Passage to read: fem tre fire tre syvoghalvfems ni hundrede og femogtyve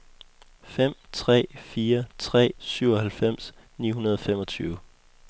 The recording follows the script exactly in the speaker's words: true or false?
true